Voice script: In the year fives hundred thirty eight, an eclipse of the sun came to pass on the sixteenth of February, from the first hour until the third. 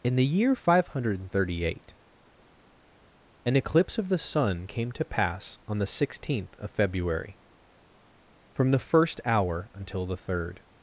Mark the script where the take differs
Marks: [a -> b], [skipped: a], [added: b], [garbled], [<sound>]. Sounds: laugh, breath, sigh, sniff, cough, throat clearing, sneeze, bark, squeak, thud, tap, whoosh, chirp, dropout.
In the year [fives -> five] hundred thirty eight, an eclipse of the sun came to pass on the sixteenth of February, from the first hour until the third.